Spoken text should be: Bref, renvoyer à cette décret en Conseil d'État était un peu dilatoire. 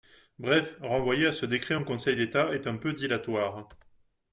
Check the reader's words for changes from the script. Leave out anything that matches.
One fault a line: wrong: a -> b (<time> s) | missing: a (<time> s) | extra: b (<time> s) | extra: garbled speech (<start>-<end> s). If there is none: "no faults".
wrong: cette -> ce (1.3 s)
wrong: était -> est (2.5 s)